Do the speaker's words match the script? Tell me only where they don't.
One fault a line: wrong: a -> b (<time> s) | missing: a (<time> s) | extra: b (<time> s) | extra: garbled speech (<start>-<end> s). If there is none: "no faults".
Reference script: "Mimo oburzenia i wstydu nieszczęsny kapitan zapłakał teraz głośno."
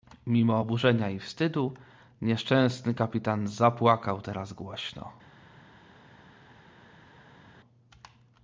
no faults